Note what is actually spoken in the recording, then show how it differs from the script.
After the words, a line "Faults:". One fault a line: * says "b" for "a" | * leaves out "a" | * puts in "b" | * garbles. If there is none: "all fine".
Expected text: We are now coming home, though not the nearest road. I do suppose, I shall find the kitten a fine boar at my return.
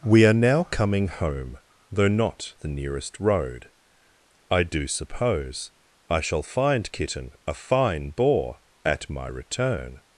We are now coming home, though not the nearest road. I do suppose, I shall find kitten a fine boar at my return.
Faults:
* leaves out "the"